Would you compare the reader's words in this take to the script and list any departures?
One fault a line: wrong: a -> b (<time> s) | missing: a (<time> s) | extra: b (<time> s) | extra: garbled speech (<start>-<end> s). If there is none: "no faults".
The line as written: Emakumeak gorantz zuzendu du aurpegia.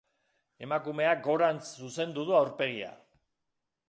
no faults